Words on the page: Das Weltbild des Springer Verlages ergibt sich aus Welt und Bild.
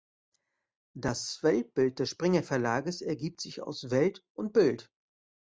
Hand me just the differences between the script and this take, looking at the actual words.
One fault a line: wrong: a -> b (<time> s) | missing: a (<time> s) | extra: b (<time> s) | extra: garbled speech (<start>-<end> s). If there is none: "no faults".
no faults